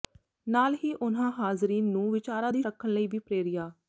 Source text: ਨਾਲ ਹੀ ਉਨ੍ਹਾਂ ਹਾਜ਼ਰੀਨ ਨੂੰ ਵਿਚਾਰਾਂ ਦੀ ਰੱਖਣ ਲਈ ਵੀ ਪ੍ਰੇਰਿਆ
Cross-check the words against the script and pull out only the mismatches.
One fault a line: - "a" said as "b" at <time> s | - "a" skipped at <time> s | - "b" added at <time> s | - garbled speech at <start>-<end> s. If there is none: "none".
none